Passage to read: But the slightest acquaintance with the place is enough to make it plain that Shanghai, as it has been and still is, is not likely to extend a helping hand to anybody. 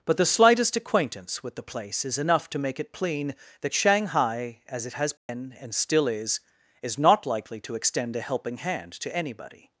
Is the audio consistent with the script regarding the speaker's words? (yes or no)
yes